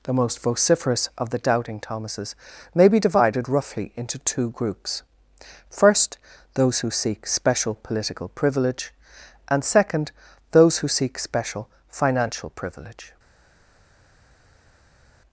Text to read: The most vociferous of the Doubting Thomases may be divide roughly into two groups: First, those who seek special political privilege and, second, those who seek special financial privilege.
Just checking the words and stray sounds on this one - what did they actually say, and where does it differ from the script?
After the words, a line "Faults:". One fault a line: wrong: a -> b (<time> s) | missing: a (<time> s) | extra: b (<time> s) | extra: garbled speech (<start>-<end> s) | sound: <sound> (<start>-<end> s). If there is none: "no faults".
The most vociferous of the Doubting Thomases may be divided roughly into two groups: First, those who seek special political privilege and, second, those who seek special financial privilege.
Faults:
wrong: divide -> divided (3.0 s)